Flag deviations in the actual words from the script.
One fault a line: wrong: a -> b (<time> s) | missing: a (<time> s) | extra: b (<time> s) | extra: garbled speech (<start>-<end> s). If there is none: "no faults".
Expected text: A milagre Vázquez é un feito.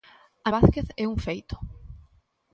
missing: milagre (0.5 s)